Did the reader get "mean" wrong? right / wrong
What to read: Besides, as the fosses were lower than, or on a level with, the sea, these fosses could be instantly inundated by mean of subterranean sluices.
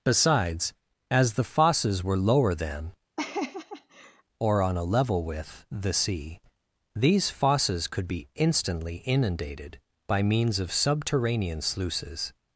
wrong